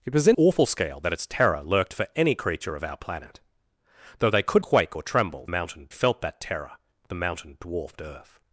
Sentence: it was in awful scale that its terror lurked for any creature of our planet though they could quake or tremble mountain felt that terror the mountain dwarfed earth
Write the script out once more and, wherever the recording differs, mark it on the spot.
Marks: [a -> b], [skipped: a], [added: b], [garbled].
it was in awful scale that its terror lurked for any creature of our planet though they could quake or tremble mountain felt that terror the mountain dwarfed earth